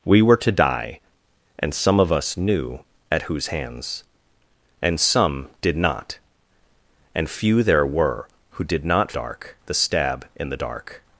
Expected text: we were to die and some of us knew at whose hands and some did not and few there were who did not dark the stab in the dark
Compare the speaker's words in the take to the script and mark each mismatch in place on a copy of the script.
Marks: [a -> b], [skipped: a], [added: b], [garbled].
we were to die and some of us knew at whose hands and some did not and few there were who did not dark the stab in the dark